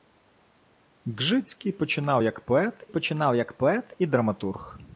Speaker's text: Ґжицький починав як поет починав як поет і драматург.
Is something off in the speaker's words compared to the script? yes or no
no